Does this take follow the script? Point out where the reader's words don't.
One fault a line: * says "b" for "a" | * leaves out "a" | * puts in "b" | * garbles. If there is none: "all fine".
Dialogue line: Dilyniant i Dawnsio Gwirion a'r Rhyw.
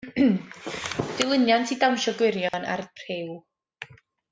all fine